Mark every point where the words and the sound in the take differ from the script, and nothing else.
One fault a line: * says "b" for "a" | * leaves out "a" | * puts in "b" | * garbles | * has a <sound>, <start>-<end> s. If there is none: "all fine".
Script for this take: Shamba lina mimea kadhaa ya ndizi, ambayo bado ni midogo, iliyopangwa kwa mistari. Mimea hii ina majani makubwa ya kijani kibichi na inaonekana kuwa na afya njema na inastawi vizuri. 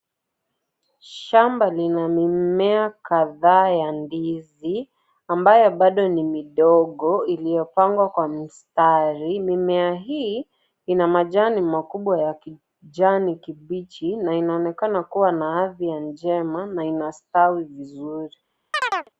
* has a chirp, 18.7-19.1 s